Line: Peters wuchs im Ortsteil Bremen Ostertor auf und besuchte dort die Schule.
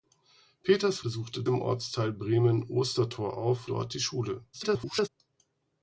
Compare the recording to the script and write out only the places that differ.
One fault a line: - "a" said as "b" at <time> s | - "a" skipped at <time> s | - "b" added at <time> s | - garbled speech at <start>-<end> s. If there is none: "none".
- "wuchs" said as "besuchte" at 1.0 s
- "und besuchte" skipped at 3.7 s
- garbled speech at 4.5-5.1 s